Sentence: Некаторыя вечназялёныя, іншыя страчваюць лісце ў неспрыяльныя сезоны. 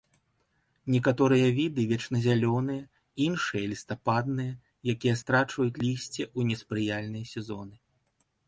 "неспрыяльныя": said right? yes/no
yes